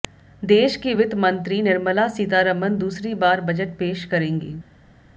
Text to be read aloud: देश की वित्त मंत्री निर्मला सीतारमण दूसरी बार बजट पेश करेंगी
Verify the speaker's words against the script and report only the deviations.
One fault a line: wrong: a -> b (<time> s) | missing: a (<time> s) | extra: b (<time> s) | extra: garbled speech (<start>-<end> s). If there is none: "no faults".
no faults